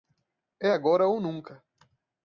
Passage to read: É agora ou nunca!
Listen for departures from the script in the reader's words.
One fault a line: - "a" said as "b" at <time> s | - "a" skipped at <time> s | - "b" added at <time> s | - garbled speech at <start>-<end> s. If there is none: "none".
none